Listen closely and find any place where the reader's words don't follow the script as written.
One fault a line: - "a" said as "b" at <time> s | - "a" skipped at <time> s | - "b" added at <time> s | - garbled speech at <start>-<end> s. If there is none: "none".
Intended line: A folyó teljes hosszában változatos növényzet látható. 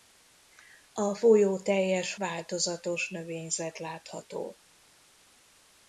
- "hosszában" skipped at 2.1 s